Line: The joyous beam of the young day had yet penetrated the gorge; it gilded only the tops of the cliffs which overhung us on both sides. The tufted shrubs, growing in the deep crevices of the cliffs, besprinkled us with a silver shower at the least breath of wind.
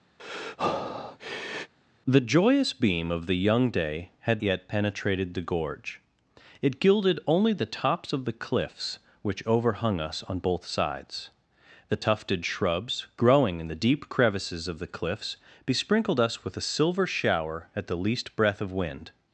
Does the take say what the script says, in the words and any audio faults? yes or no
no